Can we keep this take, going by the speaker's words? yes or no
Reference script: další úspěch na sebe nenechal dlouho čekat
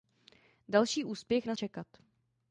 no